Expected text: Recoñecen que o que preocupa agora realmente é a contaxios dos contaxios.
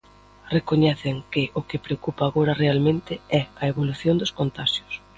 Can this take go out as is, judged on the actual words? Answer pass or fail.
fail